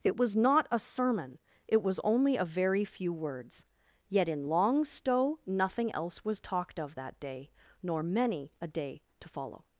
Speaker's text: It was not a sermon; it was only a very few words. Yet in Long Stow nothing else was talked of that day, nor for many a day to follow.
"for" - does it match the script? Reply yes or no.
no